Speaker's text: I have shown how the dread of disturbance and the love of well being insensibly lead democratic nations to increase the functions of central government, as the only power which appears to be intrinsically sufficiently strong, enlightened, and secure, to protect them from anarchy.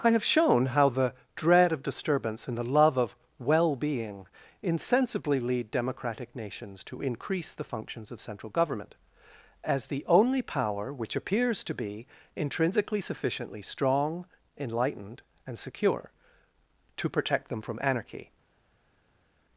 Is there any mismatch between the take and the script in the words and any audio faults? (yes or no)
no